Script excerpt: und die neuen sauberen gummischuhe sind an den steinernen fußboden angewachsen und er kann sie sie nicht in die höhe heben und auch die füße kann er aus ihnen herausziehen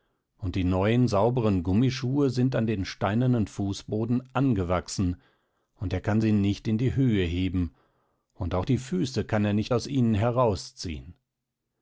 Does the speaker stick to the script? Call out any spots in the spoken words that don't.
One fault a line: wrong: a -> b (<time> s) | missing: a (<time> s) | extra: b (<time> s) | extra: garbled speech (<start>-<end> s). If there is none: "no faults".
missing: sie (6.3 s)
extra: nicht (9.5 s)